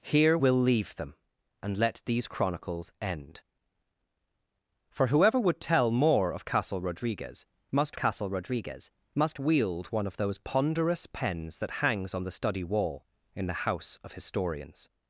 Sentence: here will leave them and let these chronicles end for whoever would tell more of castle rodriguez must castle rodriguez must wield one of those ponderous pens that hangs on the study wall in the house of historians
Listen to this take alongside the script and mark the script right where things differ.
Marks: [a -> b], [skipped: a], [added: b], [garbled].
here will leave them and let these chronicles end for whoever would tell more of castle rodriguez must castle rodriguez must wield one of those ponderous pens that hangs on the study wall in the house of historians